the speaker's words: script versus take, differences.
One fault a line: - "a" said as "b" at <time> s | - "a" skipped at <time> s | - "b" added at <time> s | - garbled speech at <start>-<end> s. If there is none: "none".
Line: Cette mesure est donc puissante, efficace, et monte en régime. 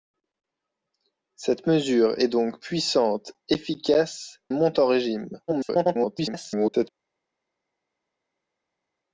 - "et" skipped at 4.4 s
- garbled speech at 5.5-6.9 s